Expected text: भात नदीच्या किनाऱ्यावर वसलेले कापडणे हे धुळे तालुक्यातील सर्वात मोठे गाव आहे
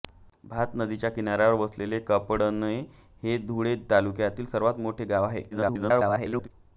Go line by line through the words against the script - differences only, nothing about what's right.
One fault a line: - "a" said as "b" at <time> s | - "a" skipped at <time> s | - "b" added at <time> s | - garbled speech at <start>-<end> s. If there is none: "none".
- garbled speech at 5.5-6.5 s